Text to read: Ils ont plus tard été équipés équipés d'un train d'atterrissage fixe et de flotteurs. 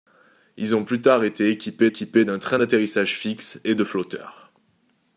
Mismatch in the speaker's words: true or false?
false